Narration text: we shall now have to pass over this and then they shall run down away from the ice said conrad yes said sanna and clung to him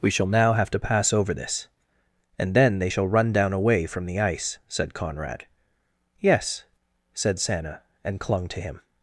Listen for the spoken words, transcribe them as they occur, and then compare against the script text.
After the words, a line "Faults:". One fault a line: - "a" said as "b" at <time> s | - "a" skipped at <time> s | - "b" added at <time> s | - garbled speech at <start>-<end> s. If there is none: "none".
we shall now have to pass over this and then they shall run down away from the ice said conrad yes said sanna and clung to him
Faults:
none